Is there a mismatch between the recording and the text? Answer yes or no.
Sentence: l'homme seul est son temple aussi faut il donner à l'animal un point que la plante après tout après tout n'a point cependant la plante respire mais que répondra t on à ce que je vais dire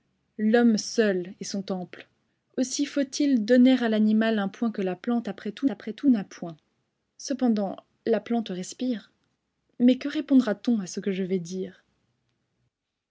no